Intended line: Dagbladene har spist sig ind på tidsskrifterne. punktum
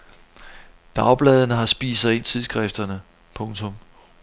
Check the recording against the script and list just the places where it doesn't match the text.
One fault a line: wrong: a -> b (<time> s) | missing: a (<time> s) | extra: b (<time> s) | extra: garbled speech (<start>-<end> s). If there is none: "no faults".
missing: på (2.2 s)